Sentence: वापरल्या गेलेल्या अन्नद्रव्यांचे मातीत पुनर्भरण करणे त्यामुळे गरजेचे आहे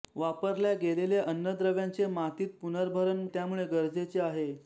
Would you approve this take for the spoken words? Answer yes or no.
no